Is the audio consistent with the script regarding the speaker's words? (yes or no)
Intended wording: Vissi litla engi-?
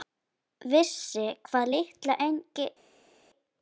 no